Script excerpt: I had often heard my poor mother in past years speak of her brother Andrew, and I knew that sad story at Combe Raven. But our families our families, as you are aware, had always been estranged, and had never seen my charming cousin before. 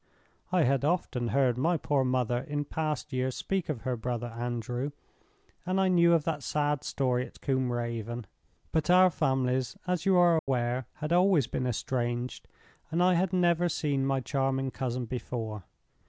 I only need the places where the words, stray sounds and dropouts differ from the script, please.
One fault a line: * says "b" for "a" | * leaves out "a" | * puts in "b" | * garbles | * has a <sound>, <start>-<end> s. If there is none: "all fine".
* puts in "of"
* leaves out "our families"
* has a dropout, 10.4-10.5 s
* puts in "I"